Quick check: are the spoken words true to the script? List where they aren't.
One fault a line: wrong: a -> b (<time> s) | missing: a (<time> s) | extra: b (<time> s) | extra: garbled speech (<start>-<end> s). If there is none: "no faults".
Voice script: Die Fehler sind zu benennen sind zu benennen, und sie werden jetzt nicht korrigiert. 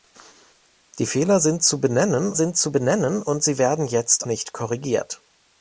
no faults